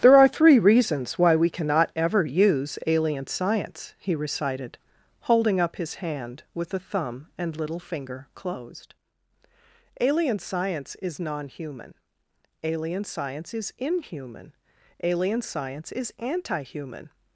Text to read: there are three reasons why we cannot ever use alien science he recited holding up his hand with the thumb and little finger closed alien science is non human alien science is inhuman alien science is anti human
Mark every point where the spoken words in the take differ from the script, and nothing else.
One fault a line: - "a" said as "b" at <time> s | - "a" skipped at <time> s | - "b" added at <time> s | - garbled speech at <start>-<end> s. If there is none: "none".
none